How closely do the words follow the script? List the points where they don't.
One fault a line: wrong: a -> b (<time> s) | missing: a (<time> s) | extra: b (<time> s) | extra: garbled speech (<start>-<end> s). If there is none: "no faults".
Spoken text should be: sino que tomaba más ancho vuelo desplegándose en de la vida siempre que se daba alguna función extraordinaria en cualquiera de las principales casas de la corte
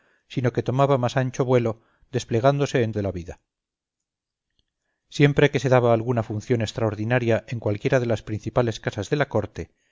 no faults